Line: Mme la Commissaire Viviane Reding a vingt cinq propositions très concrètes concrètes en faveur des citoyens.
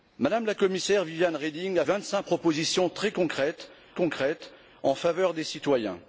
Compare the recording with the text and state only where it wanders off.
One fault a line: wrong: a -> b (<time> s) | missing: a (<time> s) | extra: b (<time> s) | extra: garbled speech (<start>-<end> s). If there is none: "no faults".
no faults